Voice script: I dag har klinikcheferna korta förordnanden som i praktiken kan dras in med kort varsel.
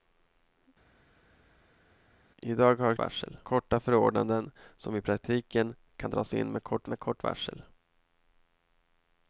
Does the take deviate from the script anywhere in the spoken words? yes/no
yes